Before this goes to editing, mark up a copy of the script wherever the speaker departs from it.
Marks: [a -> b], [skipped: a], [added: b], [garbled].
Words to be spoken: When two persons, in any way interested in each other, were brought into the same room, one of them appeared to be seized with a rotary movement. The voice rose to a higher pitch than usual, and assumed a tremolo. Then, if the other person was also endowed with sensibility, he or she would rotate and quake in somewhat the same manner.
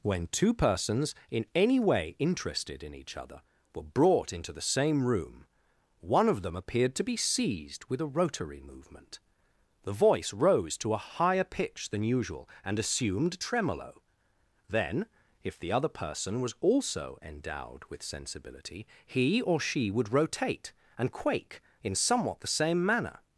When two persons, in any way interested in each other, were brought into the same room, one of them appeared to be seized with a rotary movement. The voice rose to a higher pitch than usual, and assumed [skipped: a] tremolo. Then, if the other person was also endowed with sensibility, he or she would rotate and quake in somewhat the same manner.